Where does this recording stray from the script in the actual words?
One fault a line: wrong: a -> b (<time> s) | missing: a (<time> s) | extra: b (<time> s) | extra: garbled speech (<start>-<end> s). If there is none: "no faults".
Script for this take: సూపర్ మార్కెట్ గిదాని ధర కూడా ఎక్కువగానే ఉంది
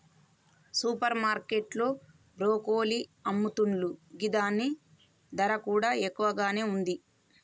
extra: లో బ్రొకోలి అమ్ముతున్లు (1.8 s)